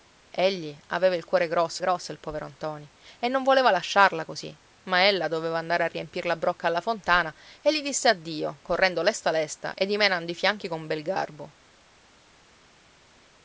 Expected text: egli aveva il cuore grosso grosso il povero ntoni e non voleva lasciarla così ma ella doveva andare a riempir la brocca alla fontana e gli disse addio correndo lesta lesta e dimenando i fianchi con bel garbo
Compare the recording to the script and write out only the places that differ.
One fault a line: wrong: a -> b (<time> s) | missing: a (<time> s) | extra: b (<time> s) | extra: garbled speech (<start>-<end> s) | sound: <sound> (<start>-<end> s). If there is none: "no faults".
no faults